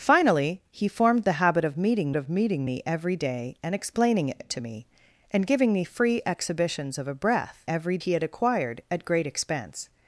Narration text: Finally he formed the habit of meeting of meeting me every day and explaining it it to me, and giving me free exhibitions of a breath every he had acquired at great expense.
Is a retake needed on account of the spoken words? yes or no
no